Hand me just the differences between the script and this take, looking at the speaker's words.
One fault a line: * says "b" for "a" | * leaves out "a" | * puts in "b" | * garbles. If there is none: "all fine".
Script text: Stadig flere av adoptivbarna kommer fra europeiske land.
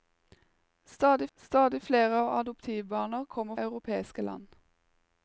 * puts in "stadig"
* leaves out "fra"